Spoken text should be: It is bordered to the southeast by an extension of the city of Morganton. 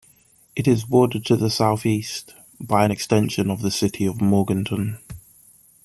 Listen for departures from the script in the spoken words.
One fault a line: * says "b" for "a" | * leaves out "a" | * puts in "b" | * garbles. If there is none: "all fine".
all fine